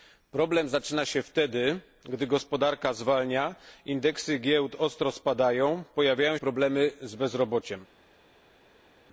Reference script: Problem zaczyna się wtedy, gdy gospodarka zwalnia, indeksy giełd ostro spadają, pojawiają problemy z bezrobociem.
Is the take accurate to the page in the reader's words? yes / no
yes